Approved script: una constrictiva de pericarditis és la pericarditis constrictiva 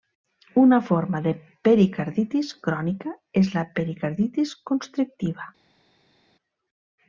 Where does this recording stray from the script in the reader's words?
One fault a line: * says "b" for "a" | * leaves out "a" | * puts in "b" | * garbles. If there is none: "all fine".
* says "forma" for "constrictiva"
* puts in "crònica"